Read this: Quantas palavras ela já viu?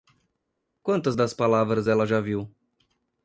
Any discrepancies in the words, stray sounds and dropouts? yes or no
yes